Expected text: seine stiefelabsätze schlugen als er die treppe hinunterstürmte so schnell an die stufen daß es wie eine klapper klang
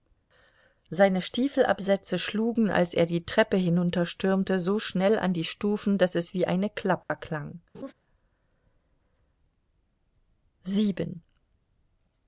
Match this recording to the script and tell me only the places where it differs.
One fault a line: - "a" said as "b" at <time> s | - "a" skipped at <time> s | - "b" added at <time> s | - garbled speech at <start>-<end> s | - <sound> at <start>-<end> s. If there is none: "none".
- dropout at 7.0-7.1 s
- laugh at 7.7-7.9 s